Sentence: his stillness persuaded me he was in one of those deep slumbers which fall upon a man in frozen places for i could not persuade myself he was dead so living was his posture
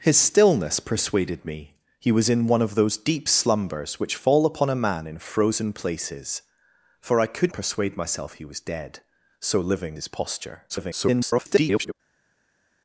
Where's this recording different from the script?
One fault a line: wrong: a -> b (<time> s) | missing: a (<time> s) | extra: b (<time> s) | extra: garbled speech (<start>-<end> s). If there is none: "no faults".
missing: not (7.5 s)
missing: was (10.0 s)
extra: garbled speech (10.7-11.9 s)